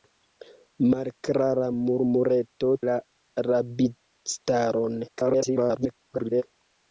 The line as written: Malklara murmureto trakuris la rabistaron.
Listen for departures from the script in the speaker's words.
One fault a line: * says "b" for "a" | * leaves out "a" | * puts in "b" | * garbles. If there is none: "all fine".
* leaves out "trakuris"
* garbles